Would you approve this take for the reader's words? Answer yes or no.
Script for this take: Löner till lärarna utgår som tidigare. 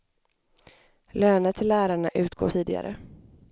no